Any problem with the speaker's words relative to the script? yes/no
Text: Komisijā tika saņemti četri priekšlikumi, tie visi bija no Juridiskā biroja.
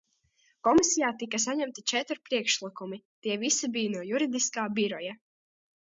no